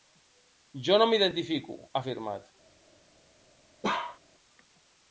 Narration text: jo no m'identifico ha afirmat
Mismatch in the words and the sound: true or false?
true